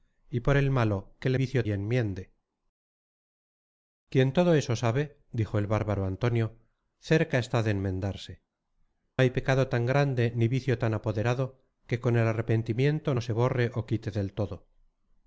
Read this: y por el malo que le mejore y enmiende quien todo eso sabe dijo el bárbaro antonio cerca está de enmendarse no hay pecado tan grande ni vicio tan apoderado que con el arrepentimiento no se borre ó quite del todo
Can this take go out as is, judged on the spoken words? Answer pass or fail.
fail